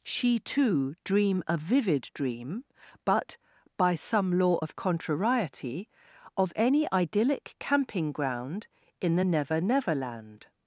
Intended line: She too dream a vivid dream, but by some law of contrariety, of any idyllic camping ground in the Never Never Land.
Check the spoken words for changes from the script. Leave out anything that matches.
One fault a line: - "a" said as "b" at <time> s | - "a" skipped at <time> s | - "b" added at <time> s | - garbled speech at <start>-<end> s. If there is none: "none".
none